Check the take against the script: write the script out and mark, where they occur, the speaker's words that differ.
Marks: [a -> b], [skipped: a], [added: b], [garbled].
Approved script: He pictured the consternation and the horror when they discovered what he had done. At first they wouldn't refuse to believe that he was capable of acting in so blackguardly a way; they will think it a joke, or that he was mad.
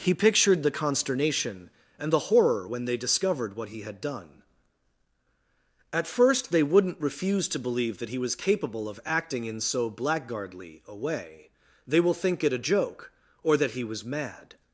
He pictured the consternation and the horror when they discovered what he had done. At first they wouldn't refuse to believe that he was capable of acting in so blackguardly a way; they will think it a joke, or that he was mad.